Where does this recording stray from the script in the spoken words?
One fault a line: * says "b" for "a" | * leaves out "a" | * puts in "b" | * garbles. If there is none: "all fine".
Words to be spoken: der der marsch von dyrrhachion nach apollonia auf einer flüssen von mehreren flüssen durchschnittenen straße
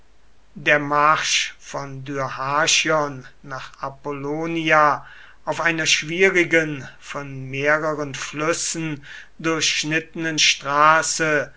* leaves out "der"
* says "schwierigen" for "flüssen"